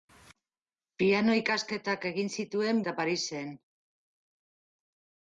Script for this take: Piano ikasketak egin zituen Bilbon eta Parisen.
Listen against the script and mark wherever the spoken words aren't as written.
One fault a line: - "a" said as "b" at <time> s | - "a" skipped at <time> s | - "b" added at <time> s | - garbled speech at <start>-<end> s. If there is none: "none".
- "Bilbon" skipped at 2.8 s